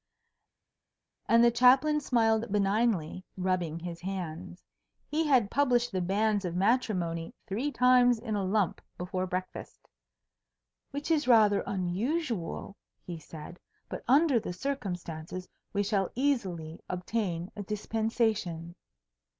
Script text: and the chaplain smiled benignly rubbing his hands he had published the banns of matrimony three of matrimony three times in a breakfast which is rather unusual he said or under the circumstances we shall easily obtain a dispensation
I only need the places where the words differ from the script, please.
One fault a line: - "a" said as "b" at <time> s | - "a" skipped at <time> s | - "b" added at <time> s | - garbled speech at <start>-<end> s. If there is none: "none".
- "of matrimony three" skipped at 7.7 s
- "lump before" added at 8.4 s
- "or" said as "but" at 13.9 s